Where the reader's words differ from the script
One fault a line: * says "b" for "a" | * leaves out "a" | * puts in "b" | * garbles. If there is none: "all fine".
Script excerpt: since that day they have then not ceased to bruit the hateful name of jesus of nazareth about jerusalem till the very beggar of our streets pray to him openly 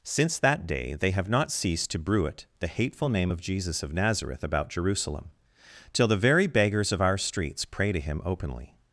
* leaves out "then"
* says "beggars" for "beggar"